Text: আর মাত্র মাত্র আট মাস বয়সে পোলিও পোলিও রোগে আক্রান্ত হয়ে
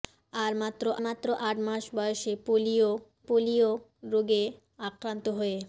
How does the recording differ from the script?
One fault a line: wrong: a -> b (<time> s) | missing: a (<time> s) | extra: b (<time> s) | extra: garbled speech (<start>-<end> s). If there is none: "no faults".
no faults